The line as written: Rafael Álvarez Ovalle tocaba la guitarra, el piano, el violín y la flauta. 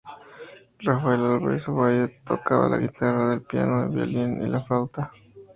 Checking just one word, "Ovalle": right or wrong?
right